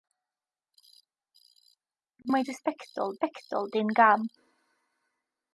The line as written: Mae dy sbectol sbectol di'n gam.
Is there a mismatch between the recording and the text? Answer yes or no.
no